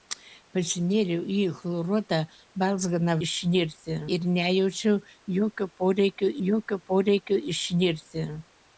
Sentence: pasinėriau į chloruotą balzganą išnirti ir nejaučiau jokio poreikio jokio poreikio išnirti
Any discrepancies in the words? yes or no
no